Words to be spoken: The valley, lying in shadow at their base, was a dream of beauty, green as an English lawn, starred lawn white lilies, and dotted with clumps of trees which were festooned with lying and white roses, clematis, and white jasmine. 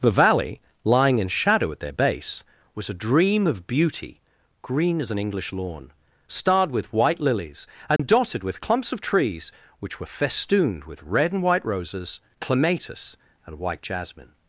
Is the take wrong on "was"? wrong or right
right